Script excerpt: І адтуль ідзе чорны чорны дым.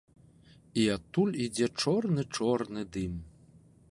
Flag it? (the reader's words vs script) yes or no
no